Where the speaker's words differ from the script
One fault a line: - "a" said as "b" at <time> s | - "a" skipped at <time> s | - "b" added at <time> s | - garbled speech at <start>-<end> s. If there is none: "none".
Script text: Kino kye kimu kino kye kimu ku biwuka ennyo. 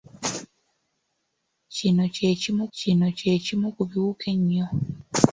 none